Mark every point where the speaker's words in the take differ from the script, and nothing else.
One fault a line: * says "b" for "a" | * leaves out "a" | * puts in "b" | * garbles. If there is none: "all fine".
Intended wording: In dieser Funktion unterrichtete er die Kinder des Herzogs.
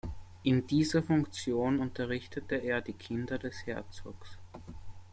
all fine